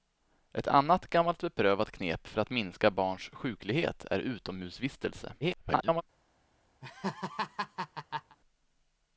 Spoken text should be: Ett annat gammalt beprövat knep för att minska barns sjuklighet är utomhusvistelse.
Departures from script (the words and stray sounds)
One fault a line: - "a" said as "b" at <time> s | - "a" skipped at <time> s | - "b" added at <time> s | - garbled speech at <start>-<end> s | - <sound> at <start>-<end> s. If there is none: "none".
- garbled speech at 5.4-6.0 s
- laugh at 6.8-8.4 s